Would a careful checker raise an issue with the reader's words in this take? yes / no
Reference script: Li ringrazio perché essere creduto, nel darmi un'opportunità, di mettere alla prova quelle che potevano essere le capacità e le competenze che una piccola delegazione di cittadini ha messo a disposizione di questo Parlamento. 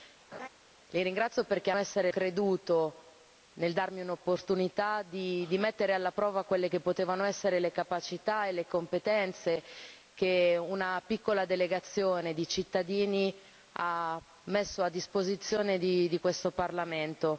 no